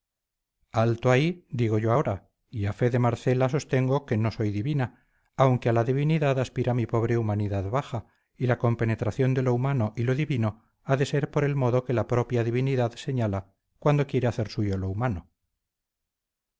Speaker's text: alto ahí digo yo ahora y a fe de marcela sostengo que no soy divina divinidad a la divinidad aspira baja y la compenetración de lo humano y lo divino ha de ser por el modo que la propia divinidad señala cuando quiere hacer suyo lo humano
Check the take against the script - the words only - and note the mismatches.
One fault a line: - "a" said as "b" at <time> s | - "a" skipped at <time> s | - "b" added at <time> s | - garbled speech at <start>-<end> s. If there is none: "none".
- "divinidad" said as "aunque" at 5.4 s
- "mi pobre humanidad" added at 6.7 s